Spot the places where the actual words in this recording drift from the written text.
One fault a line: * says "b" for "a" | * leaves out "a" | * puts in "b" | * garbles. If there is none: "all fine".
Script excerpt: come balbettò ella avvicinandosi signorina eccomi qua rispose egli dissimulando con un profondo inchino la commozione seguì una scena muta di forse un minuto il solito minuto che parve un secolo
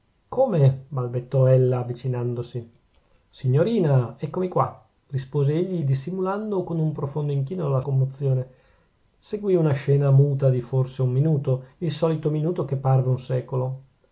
all fine